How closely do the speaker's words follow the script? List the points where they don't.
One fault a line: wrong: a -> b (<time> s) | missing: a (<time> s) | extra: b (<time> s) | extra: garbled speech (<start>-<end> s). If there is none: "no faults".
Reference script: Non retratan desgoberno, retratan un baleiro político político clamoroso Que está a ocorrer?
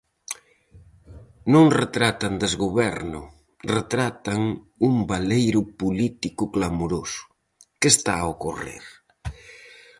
missing: político (6.4 s)